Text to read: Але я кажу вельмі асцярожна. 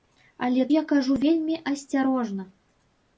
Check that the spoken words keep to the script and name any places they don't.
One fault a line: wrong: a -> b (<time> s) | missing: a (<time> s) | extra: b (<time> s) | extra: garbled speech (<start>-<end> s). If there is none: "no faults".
no faults